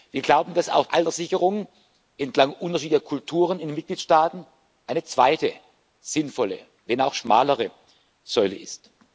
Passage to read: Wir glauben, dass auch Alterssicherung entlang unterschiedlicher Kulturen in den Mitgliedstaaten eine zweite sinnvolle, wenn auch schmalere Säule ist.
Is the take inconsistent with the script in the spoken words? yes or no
no